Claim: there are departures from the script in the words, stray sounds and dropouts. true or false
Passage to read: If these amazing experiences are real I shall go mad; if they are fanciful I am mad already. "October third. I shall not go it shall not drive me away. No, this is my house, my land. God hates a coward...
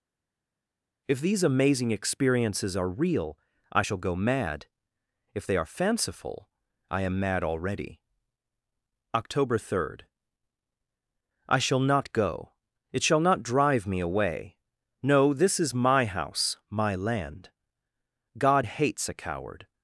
false